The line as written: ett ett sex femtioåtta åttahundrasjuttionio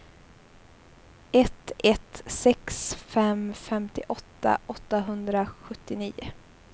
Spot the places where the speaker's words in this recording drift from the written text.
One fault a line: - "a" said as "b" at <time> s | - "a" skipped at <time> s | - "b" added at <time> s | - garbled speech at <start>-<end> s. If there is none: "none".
- "fem" added at 2.9 s